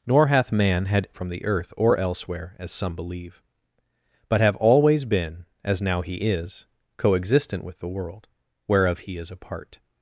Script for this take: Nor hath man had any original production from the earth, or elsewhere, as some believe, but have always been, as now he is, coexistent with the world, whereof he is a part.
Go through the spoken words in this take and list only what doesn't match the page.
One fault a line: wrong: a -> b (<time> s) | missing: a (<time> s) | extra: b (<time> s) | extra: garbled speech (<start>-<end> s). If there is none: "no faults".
missing: any original production (1.1 s)